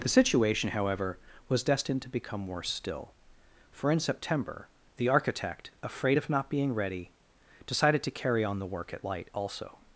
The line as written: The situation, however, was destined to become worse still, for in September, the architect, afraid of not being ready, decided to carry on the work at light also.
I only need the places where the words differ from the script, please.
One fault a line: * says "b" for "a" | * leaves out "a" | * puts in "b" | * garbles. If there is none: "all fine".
all fine